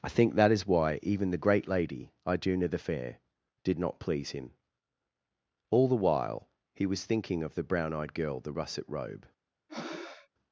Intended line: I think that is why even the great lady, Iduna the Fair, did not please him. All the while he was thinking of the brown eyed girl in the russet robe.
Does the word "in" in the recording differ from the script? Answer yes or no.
yes